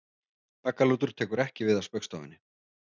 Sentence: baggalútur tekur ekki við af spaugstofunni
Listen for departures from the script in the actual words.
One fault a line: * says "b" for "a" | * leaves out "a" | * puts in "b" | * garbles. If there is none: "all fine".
all fine